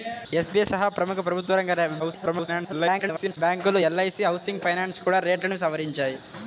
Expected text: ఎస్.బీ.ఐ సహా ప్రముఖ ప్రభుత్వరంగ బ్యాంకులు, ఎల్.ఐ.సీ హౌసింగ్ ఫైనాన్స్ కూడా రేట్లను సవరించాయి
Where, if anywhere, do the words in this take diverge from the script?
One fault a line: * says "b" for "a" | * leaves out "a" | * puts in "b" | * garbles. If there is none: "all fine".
* garbles